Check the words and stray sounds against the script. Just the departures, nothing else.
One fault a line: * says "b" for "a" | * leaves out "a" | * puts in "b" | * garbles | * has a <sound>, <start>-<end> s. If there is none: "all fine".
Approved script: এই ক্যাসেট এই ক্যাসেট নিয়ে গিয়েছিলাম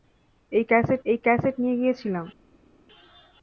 all fine